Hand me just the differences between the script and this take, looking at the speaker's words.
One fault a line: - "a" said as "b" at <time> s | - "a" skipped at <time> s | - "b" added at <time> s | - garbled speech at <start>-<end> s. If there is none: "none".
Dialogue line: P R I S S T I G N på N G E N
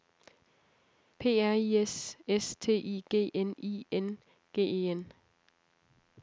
- "på" said as "I" at 3.6 s